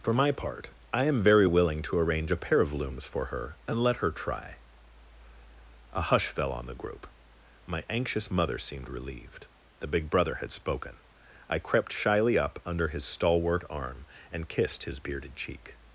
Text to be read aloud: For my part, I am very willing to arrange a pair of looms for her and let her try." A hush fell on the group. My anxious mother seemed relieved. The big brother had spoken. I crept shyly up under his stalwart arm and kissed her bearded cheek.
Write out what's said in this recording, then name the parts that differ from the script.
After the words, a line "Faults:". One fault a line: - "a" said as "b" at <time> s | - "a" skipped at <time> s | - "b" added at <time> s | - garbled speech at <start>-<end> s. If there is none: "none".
For my part, I am very willing to arrange a pair of looms for her and let her try." A hush fell on the group. My anxious mother seemed relieved. The big brother had spoken. I crept shyly up under his stalwart arm and kissed his bearded cheek.
Faults:
- "her" said as "his" at 14.8 s